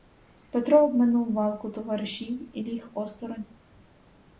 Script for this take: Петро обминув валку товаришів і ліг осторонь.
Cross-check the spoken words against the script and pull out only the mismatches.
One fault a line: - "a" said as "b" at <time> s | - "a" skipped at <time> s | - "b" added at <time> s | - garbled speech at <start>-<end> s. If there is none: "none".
none